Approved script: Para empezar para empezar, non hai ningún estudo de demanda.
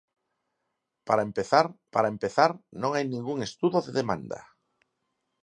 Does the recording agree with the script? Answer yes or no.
yes